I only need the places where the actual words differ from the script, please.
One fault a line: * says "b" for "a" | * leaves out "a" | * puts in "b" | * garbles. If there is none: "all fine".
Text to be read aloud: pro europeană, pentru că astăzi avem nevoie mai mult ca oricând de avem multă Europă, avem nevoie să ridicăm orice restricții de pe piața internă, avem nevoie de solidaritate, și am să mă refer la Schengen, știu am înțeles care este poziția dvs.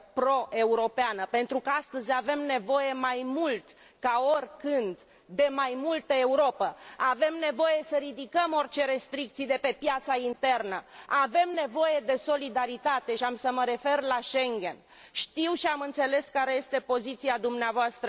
* says "mai" for "avem"
* puts in "și"